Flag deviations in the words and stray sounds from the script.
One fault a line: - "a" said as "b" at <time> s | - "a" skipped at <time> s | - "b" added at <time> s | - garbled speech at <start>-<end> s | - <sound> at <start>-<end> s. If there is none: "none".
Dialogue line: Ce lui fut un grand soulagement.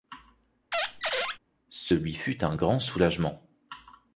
- squeak at 0.7-1.4 s